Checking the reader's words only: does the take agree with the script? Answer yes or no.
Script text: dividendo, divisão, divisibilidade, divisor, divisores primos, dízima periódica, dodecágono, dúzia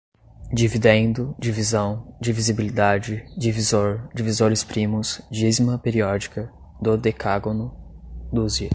yes